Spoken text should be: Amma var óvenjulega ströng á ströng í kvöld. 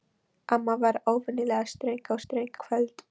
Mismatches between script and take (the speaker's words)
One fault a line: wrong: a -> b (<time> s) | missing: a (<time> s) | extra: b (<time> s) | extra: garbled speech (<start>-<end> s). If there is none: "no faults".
no faults